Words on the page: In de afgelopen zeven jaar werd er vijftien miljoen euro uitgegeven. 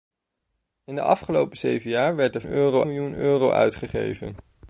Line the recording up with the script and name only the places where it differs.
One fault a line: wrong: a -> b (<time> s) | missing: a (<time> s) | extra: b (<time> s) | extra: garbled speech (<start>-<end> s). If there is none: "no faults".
wrong: vijftien -> euro (2.4 s)